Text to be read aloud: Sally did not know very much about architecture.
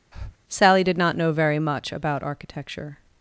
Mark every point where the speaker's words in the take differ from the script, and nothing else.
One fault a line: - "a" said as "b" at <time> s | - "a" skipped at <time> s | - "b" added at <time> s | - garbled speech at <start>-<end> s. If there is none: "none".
none